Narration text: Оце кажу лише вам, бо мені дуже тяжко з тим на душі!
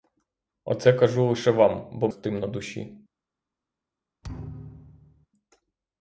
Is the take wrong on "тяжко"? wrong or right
wrong